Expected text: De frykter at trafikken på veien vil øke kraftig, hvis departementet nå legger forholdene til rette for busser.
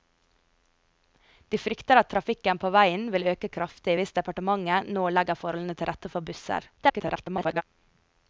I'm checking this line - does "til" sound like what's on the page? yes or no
yes